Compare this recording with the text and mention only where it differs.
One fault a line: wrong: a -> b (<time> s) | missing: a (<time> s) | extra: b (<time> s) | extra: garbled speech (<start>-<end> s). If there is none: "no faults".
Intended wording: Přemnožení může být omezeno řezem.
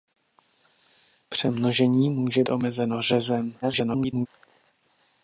missing: být (2.4 s)
extra: garbled speech (3.6-4.3 s)